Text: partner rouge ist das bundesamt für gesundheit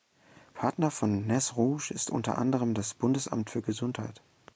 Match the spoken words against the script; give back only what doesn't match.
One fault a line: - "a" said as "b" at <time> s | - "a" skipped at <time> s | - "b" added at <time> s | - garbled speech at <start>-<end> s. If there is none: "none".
- "von nez" added at 0.9 s
- "unter anderem" added at 2.1 s